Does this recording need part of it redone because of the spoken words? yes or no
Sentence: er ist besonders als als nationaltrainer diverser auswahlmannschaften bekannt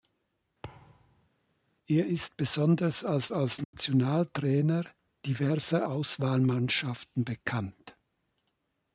no